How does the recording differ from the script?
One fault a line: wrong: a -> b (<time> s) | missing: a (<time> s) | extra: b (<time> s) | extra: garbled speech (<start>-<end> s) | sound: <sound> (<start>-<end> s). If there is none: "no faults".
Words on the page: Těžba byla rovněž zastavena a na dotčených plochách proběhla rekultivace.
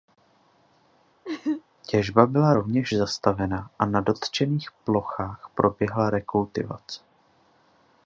sound: laugh (1.2-1.6 s)